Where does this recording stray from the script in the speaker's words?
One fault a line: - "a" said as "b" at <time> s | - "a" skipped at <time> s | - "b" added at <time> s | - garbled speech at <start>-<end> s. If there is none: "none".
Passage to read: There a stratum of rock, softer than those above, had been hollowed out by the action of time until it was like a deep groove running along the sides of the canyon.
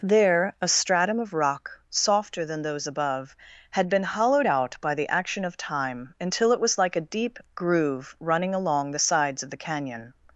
none